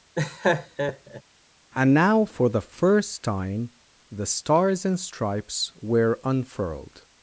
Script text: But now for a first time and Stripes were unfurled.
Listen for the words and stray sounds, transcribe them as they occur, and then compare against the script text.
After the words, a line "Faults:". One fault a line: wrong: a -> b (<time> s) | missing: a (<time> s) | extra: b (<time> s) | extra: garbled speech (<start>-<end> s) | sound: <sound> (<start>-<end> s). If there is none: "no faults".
And now for the first time the Stars and Stripes were unfurled.
Faults:
sound: laugh (0.1-1.2 s)
wrong: But -> And (1.7 s)
wrong: a -> the (2.5 s)
extra: the Stars (4.1 s)